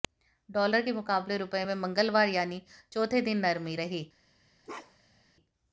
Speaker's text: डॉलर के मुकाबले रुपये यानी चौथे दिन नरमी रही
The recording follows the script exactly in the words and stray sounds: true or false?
false